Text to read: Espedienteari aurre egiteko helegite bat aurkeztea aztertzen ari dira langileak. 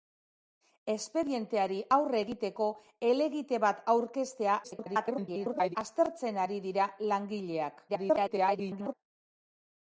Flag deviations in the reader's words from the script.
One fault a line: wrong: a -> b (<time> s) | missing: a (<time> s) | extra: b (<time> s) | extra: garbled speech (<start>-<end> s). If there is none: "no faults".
extra: garbled speech (4.6-5.8 s)
extra: garbled speech (7.9-8.9 s)